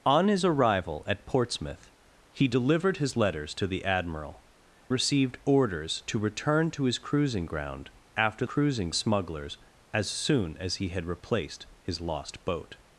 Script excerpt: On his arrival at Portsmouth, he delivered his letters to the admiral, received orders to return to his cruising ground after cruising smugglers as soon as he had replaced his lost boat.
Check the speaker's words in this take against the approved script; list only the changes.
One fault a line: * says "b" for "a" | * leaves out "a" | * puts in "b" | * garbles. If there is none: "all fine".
all fine